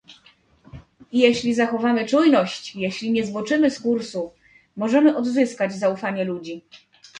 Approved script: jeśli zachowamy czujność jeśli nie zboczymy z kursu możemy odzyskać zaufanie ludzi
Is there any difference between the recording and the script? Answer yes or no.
no